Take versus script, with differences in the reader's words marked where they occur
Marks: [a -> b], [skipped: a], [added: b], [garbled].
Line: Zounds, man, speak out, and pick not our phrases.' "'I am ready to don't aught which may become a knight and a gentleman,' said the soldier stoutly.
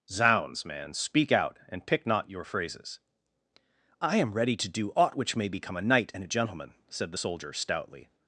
Zounds, man, speak out, and pick not [our -> your] phrases.' "'I am ready to [don't -> do] aught which may become a knight and a gentleman,' said the soldier stoutly.